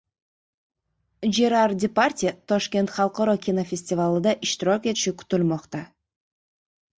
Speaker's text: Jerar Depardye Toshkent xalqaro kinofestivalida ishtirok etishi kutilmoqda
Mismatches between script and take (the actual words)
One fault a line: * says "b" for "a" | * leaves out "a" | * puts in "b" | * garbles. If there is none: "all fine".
all fine